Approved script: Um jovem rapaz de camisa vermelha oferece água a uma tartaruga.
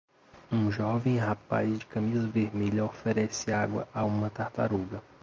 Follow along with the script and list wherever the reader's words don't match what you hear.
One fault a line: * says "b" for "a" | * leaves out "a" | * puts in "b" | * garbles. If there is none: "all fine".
all fine